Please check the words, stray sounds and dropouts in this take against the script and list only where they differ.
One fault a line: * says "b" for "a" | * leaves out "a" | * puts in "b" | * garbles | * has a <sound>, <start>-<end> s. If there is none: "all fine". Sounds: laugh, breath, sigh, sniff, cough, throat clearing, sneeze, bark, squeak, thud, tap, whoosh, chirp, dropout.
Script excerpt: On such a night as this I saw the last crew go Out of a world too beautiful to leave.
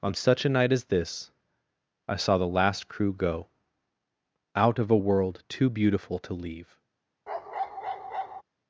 * has a bark, 7.3-8.4 s